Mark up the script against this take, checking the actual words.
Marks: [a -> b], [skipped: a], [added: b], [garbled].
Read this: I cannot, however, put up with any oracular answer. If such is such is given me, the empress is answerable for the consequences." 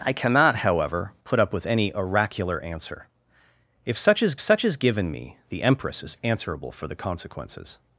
I cannot, however, put up with any oracular answer. If such is such is given me, the empress is answerable for the consequences."